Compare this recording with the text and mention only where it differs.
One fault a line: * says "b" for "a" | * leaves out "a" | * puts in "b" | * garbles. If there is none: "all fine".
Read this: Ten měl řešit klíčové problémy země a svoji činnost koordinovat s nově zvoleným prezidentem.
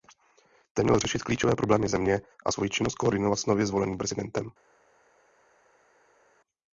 all fine